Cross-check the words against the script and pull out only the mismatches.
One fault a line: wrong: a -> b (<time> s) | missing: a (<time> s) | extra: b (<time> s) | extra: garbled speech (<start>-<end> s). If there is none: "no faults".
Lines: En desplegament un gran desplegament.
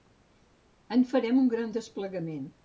wrong: desplegament -> farem (1.1 s)